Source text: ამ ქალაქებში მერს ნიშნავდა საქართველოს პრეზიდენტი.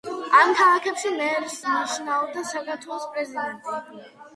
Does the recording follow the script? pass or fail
pass